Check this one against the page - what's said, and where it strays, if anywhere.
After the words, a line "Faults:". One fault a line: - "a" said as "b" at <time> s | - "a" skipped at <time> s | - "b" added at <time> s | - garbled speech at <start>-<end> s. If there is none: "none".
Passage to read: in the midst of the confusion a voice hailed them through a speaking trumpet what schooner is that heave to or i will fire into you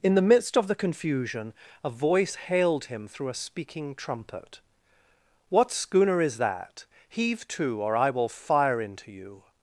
in the midst of the confusion a voice hailed him through a speaking trumpet what schooner is that heave to or i will fire into you
Faults:
- "them" said as "him" at 2.9 s